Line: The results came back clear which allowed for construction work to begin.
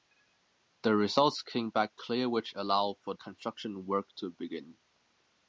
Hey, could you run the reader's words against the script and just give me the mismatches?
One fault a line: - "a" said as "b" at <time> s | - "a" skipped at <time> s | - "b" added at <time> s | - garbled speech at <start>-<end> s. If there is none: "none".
none